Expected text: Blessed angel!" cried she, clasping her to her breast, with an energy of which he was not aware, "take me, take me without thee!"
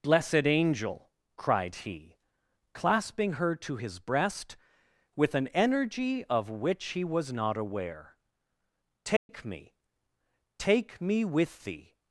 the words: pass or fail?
fail